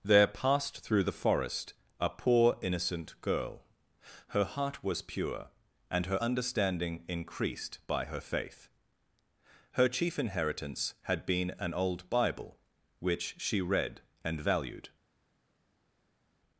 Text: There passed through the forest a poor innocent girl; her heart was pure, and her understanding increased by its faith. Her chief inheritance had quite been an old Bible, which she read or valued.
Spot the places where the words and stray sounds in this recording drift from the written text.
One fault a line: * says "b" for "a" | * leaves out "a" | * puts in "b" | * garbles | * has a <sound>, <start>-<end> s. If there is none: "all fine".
* says "her" for "its"
* leaves out "quite"
* says "and" for "or"